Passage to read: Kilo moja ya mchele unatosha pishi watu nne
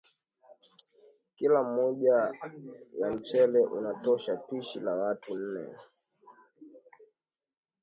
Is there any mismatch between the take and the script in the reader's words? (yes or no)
yes